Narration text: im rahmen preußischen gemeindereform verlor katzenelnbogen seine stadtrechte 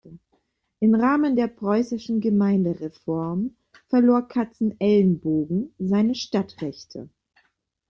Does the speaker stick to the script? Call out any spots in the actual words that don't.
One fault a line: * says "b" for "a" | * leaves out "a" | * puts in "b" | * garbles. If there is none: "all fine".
* puts in "der"